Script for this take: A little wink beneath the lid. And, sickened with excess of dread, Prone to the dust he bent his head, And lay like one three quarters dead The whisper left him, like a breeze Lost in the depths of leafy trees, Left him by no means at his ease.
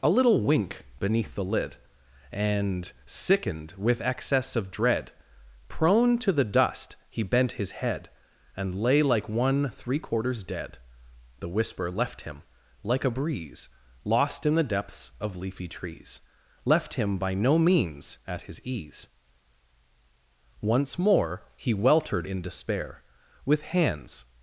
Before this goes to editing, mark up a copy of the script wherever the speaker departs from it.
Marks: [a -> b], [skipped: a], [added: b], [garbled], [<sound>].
A little wink beneath the lid. And, sickened with excess of dread, Prone to the dust he bent his head, And lay like one three quarters dead The whisper left him, like a breeze Lost in the depths of leafy trees, Left him by no means at his ease. [added: Once more he weltered in despair With hands]